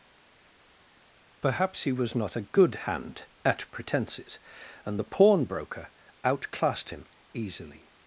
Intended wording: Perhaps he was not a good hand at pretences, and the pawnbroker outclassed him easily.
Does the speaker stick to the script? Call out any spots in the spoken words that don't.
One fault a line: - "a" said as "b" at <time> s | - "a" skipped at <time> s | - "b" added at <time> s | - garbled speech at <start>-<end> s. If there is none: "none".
none